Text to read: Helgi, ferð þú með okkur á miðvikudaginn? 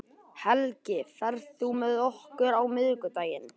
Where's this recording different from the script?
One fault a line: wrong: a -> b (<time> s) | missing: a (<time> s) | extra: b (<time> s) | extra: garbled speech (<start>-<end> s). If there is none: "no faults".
no faults